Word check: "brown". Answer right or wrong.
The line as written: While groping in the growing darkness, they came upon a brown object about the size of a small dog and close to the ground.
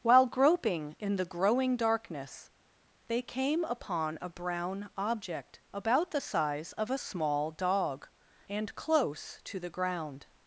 right